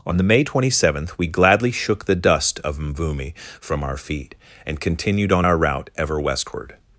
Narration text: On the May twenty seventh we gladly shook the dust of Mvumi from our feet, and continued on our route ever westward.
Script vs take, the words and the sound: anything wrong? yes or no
no